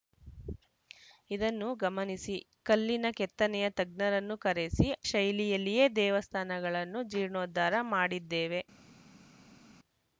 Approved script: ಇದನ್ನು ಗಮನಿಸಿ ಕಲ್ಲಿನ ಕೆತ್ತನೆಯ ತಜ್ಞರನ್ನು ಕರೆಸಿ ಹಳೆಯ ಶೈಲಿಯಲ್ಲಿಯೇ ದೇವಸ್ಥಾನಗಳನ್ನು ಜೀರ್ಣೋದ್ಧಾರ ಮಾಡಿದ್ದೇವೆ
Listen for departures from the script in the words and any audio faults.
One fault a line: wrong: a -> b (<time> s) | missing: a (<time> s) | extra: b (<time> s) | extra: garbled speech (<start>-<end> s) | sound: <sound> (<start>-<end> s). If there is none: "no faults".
missing: ಹಳೆಯ (4.9 s)